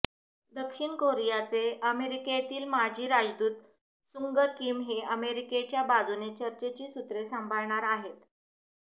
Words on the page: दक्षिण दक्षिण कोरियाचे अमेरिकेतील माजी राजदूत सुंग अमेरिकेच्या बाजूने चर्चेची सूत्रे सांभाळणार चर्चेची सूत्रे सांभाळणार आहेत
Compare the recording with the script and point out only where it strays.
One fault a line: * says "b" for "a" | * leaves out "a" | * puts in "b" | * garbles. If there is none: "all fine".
* leaves out "दक्षिण"
* puts in "किम हे"
* leaves out "चर्चेची सूत्रे सांभाळणार"